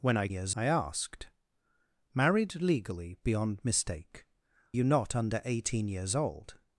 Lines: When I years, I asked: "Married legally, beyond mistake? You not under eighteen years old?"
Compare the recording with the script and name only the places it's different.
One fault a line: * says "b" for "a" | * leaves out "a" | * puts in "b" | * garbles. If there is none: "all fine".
all fine